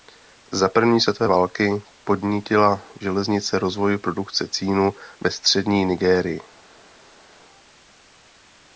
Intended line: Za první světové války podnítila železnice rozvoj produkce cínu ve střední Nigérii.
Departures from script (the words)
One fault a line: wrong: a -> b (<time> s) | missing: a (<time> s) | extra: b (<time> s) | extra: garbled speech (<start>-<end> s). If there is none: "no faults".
no faults